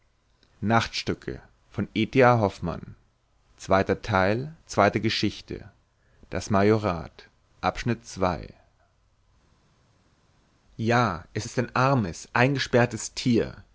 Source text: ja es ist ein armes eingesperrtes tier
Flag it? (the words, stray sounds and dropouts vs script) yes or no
no